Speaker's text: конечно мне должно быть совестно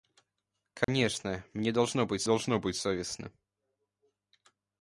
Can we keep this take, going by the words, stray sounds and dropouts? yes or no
no